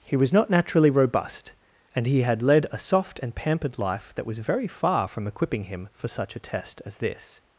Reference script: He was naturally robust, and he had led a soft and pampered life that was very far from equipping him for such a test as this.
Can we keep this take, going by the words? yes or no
no